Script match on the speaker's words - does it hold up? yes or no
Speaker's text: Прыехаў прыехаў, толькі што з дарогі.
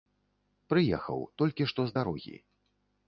no